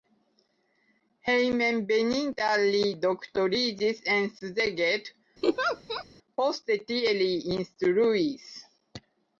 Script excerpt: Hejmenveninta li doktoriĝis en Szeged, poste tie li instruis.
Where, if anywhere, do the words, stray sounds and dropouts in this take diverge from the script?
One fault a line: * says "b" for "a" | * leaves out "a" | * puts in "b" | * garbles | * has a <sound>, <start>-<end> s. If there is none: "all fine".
* has a laugh, 5.4-6.0 s